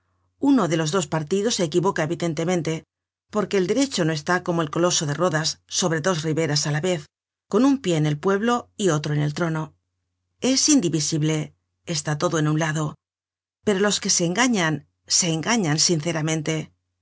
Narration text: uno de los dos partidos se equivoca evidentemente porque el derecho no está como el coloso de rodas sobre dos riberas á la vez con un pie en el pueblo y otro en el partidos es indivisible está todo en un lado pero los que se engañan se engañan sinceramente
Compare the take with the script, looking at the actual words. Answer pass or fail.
fail